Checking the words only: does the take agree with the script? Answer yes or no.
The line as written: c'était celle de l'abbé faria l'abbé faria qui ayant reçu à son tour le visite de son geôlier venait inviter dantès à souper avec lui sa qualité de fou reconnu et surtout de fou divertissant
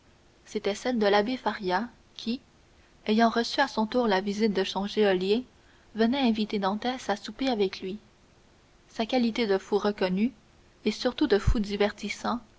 no